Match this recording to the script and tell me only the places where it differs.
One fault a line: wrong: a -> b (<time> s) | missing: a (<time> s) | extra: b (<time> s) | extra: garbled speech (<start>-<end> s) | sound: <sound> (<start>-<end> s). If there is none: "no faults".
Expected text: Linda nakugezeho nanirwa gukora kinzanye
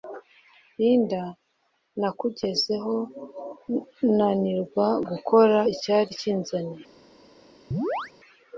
extra: icyari (5.7 s)
sound: chirp (7.7-8.1 s)